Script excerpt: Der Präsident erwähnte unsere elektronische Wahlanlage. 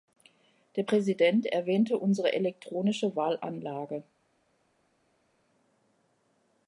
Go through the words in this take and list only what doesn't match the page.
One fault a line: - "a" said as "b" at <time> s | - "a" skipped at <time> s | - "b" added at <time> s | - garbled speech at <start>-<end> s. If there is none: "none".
none